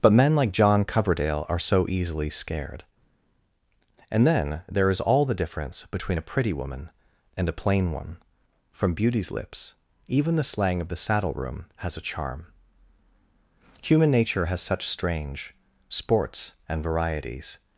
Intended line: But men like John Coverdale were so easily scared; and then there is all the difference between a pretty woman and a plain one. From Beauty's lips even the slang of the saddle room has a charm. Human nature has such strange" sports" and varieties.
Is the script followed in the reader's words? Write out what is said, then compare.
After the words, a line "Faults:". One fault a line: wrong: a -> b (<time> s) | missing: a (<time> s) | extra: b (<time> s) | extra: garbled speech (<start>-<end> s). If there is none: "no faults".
But men like John Coverdale are so easily scared; and then there is all the difference between a pretty woman and a plain one. From Beauty's lips even the slang of the saddle room has a charm. Human nature has such strange" sports" and varieties.
Faults:
wrong: were -> are (1.5 s)